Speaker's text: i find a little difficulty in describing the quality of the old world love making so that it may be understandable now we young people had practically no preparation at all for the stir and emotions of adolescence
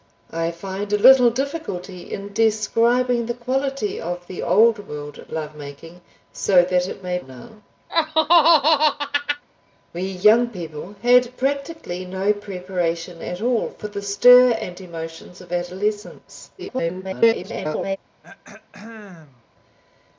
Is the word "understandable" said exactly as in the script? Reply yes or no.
no